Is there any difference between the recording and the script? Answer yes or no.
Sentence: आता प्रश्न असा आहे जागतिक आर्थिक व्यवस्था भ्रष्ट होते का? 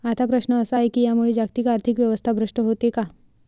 yes